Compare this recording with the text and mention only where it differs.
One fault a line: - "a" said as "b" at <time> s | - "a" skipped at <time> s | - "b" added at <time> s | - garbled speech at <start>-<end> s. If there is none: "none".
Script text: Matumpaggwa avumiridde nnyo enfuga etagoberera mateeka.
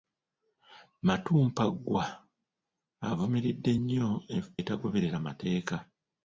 - "enfuga" skipped at 4.1 s